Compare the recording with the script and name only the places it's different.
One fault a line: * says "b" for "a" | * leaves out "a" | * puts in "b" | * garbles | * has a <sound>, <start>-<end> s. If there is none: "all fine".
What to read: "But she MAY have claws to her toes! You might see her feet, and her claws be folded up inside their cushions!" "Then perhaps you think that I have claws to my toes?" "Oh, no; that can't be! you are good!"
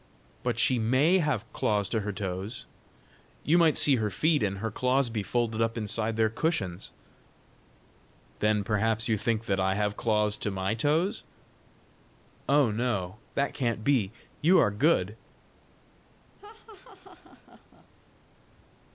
* has a laugh, 16.4-17.9 s